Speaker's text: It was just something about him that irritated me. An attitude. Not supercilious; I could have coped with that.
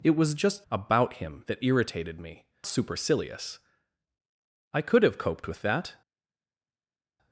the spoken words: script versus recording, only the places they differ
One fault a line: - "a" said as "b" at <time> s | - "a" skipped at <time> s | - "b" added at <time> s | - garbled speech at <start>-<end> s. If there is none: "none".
- "something" skipped at 0.7 s
- "An attitude Not" skipped at 2.5 s